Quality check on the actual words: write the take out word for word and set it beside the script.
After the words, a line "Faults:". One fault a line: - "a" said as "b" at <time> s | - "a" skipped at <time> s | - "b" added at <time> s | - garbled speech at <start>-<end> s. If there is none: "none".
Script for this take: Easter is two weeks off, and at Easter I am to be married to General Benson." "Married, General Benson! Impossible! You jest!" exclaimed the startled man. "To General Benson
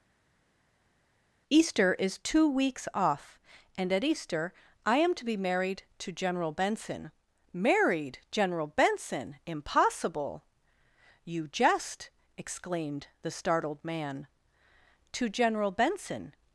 Easter is two weeks off, and at Easter I am to be married to General Benson." "Married, General Benson! Impossible! You jest!" exclaimed the startled man. "To General Benson
Faults:
none